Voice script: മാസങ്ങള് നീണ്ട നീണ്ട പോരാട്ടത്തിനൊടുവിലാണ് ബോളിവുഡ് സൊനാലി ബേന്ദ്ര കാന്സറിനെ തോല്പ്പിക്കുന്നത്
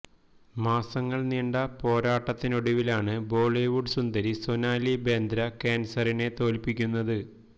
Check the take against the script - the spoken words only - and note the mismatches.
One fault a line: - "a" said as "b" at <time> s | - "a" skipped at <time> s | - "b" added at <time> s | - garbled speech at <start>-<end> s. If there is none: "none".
- "നീണ്ട" skipped at 1.6 s
- "സുന്ദരി" added at 3.9 s